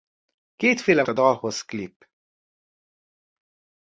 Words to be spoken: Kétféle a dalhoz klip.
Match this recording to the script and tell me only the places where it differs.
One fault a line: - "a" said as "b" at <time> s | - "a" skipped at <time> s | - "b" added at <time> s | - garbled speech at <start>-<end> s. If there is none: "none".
none